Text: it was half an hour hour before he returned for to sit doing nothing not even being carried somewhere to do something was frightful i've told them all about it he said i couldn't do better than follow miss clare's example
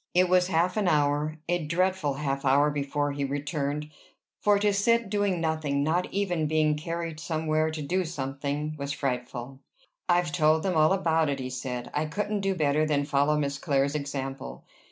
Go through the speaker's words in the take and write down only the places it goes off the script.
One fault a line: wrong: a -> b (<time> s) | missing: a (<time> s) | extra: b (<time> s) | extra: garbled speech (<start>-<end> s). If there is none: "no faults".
extra: a dreadful half (1.5 s)